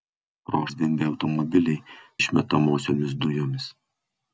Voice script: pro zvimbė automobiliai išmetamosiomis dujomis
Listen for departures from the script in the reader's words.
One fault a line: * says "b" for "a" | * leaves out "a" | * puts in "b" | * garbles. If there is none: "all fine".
all fine